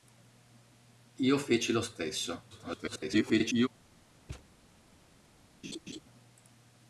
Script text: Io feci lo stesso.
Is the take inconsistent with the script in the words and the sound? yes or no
yes